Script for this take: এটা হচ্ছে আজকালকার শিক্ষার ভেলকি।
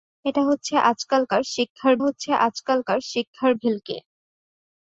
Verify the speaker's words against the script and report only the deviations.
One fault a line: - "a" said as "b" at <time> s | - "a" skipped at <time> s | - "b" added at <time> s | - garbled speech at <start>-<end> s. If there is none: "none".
- "হচ্ছে আজকালকার শিক্ষার" added at 2.0 s